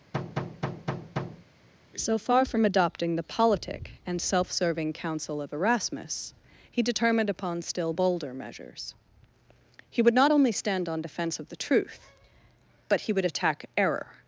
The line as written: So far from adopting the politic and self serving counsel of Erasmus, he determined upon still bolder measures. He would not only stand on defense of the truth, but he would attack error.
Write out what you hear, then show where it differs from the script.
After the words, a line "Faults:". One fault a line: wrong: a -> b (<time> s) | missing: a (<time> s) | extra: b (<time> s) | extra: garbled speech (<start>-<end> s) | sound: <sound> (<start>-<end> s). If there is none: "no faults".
So far from adopting the politic and self serving counsel of Erasmus, he determined upon still bolder measures. He would not only stand on defense of the truth, but he would attack error.
Faults:
sound: thud (0.1-1.5 s)